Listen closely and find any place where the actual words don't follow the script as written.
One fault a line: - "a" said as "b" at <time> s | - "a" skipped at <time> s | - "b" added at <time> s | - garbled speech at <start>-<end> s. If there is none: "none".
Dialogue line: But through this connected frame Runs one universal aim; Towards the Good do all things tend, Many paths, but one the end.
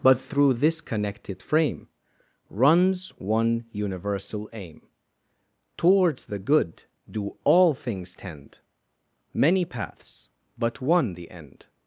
none